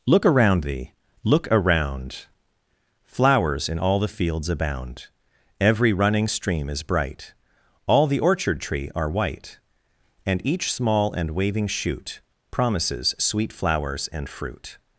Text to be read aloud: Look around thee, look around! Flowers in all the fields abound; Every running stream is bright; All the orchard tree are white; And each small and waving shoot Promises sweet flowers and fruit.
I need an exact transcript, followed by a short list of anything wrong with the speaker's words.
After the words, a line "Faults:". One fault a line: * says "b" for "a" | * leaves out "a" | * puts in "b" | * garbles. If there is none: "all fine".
Look around thee, look around! Flowers in all the fields abound; Every running stream is bright; All the orchard tree are white; And each small and waving shoot Promises sweet flowers and fruit.
Faults:
all fine